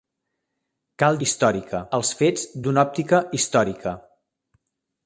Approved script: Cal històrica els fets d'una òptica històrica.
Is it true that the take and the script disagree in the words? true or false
false